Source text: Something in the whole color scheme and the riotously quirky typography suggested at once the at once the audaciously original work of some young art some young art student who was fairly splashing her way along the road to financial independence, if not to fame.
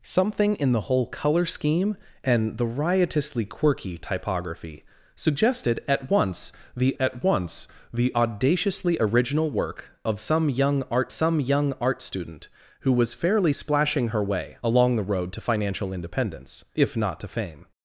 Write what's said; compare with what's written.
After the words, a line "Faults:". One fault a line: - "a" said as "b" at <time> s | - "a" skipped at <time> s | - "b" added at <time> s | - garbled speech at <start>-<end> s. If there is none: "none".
Something in the whole color scheme and the riotously quirky typography suggested at once the at once the audaciously original work of some young art some young art student who was fairly splashing her way along the road to financial independence, if not to fame.
Faults:
none